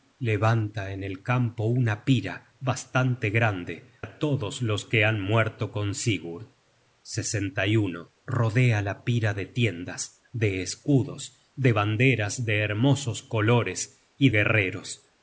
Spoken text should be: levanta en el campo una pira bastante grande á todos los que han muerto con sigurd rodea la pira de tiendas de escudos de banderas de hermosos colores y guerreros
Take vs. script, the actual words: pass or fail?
pass